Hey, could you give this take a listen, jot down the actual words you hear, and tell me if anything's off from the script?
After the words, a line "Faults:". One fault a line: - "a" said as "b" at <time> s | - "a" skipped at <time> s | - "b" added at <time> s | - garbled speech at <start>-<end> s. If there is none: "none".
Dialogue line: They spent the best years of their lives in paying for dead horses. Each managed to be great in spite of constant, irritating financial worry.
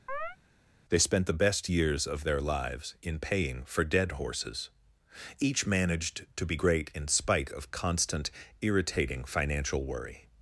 They spent the best years of their lives in paying for dead horses. Each managed to be great in spite of constant, irritating financial worry.
Faults:
none